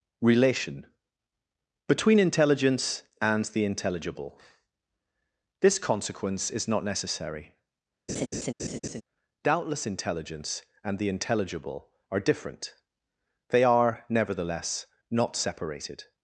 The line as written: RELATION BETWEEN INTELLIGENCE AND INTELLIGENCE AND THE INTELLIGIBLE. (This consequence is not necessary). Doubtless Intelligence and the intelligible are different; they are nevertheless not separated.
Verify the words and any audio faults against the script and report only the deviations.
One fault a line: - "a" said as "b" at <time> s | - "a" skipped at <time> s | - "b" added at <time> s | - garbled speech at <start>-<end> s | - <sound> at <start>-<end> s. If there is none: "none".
- "INTELLIGENCE AND" skipped at 3.5 s
- laugh at 8.1-9.0 s